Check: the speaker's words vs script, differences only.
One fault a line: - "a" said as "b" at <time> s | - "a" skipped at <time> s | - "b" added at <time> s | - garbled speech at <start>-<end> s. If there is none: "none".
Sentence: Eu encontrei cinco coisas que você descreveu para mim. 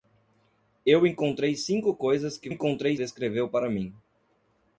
- "você" said as "encontrei" at 2.5 s